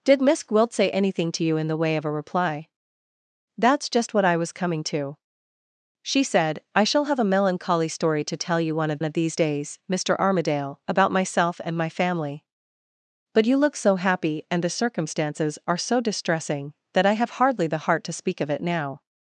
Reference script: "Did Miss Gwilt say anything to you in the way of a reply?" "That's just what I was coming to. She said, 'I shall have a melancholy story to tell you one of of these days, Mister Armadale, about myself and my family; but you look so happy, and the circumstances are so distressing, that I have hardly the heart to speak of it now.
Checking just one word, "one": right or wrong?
right